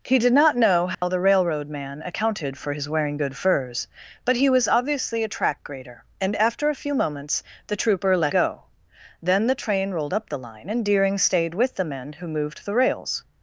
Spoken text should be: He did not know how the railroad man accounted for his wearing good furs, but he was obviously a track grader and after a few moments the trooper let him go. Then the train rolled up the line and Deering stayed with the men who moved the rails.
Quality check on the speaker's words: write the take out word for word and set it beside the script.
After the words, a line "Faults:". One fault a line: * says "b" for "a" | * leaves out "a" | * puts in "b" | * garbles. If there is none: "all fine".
He did not know how the railroad man accounted for his wearing good furs, but he was obviously a track grader and after a few moments the trooper let go. Then the train rolled up the line and Deering stayed with the men who moved the rails.
Faults:
* leaves out "him"